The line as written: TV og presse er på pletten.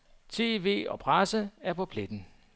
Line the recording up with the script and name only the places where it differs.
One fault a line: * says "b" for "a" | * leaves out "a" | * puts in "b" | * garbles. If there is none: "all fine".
all fine